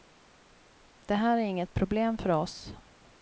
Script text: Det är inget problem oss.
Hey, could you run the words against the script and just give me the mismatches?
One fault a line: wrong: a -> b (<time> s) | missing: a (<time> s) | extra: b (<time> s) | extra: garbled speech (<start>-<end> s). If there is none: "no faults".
extra: här (1.1 s)
extra: för (2.2 s)